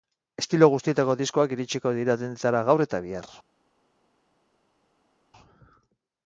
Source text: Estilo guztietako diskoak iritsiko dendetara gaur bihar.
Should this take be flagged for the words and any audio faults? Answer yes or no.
yes